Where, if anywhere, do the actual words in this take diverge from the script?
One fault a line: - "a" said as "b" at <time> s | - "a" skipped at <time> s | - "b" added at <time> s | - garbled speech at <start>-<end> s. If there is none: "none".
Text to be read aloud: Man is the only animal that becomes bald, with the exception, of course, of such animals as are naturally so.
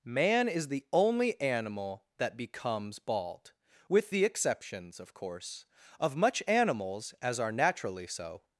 - "exception" said as "exceptions" at 4.2 s
- "such" said as "much" at 6.1 s